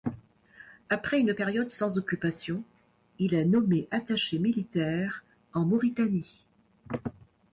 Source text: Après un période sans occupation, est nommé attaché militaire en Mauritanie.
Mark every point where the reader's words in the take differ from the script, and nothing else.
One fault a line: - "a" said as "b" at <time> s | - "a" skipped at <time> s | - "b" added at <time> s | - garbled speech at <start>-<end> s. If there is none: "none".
- "un" said as "une" at 1.2 s
- "il" added at 3.2 s